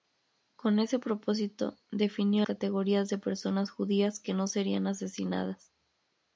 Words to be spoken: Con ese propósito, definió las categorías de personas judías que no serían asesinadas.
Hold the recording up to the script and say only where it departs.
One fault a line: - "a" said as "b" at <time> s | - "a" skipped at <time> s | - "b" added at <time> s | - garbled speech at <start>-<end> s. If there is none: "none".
- "las" skipped at 2.5 s